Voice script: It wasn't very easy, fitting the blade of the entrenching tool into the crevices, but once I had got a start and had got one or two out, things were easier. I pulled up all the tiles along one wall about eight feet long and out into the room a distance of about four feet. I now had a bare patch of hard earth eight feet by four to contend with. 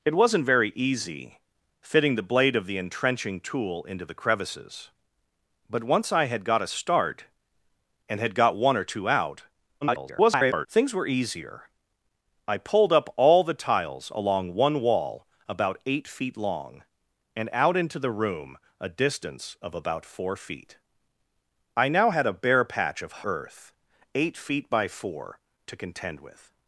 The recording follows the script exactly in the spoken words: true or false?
false